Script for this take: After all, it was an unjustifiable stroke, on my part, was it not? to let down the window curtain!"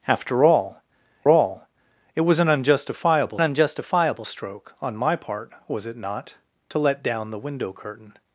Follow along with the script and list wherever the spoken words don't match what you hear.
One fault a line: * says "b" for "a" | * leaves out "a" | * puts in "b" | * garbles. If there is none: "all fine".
* puts in "all"
* puts in "unjustifiable"